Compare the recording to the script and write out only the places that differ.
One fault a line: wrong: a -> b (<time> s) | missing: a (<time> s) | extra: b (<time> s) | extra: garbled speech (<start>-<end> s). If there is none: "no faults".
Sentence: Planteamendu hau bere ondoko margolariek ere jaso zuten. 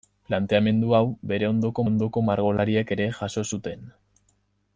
extra: ondoko (1.9 s)